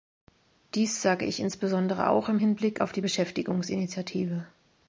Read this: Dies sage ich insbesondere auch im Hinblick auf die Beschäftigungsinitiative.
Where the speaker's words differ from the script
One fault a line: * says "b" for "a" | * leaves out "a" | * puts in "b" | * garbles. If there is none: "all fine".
all fine